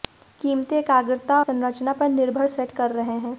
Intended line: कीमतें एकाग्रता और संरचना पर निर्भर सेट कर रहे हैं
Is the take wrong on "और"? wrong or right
wrong